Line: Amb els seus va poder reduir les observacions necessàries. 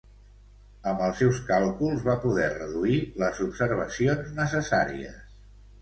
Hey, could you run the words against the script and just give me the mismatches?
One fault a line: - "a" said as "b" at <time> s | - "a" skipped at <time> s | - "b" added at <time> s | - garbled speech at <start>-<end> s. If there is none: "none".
- "càlculs" added at 1.5 s